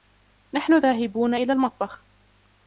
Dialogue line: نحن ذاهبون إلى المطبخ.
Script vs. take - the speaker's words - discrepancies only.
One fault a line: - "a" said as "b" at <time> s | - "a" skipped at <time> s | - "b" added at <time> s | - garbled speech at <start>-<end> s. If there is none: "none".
none